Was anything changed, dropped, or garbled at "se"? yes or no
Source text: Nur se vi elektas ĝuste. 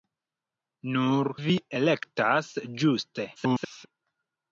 yes